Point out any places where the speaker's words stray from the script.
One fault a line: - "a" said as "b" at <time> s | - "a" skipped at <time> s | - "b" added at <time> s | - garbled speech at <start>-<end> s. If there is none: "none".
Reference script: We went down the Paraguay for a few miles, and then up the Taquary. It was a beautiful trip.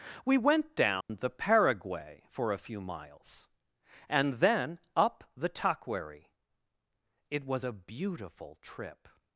none